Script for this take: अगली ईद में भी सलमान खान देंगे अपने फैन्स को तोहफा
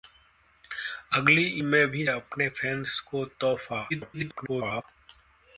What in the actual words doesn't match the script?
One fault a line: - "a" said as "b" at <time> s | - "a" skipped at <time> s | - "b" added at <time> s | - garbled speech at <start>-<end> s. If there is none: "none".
- "ईद" skipped at 1.4 s
- "सलमान खान देंगे" skipped at 2.1 s
- garbled speech at 3.9-4.8 s